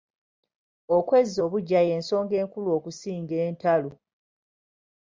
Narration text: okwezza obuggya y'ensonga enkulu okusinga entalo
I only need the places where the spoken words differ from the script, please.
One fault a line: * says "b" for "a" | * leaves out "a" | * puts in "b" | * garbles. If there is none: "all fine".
all fine